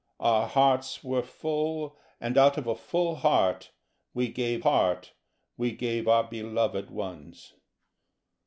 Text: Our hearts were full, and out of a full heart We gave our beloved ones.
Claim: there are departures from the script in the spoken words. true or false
true